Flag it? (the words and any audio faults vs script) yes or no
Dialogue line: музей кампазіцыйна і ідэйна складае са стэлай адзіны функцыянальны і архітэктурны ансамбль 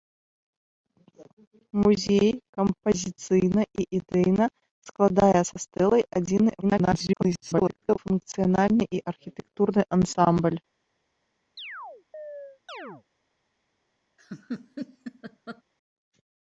yes